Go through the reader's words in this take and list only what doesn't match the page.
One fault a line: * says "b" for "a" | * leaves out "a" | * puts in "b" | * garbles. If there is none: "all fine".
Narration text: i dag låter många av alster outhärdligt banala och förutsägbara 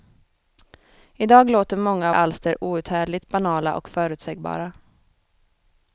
all fine